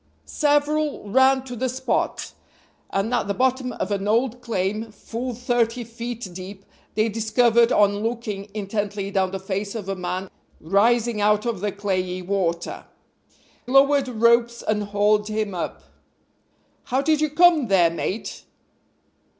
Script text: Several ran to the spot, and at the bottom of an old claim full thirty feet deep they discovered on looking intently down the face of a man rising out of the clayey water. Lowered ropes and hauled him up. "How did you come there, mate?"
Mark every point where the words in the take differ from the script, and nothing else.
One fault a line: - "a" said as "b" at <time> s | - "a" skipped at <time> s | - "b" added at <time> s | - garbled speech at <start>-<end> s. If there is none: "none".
none